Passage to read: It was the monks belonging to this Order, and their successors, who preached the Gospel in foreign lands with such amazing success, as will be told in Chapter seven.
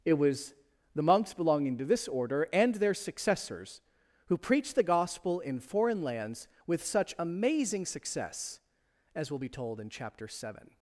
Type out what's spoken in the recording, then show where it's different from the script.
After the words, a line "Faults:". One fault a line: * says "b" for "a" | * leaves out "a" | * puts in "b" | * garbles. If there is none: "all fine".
It was the monks belonging to this Order, and their successors, who preached the Gospel in foreign lands with such amazing success, as will be told in Chapter seven.
Faults:
all fine